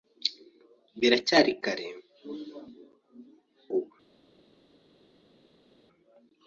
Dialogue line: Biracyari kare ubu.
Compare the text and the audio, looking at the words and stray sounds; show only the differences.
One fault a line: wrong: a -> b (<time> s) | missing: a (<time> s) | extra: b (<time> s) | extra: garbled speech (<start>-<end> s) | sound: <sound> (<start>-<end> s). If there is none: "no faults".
no faults